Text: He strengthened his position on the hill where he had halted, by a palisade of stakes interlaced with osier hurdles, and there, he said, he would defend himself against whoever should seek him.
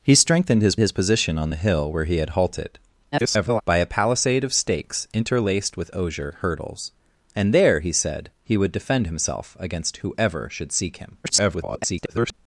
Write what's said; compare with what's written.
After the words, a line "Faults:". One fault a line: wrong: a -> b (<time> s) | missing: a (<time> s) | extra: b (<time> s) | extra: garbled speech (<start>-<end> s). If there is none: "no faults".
He strengthened his his position on the hill where he had halted, [garbled] by a palisade of stakes interlaced with osier hurdles, and there, he said, he would defend himself against whoever should seek him. [garbled]
Faults:
extra: his (0.8 s)
extra: garbled speech (3.1-3.6 s)
extra: garbled speech (11.2-12.3 s)